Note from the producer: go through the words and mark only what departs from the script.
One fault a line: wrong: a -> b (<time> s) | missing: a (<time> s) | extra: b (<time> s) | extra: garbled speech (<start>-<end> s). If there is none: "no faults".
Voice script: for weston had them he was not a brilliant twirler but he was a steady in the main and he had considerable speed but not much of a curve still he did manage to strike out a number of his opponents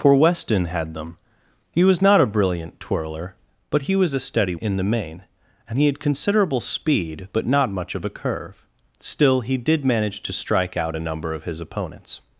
no faults